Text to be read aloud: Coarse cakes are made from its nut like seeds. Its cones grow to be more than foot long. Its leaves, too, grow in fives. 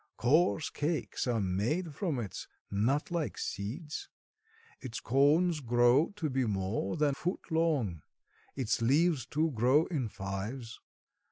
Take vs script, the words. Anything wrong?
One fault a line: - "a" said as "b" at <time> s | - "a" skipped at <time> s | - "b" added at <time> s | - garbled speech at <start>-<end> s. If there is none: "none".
none